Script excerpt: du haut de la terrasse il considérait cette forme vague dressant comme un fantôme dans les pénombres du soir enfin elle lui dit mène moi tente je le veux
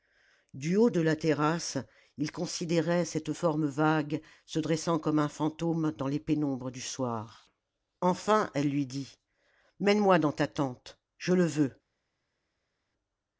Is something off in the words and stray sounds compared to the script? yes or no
yes